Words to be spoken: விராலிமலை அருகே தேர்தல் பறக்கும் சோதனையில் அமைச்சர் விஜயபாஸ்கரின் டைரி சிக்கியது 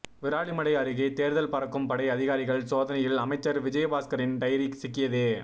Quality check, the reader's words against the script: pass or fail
fail